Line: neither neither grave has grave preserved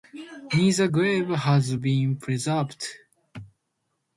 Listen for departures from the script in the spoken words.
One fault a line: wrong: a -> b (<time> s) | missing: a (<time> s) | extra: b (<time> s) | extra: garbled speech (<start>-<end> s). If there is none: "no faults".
missing: neither (0.9 s)
wrong: grave -> been (1.7 s)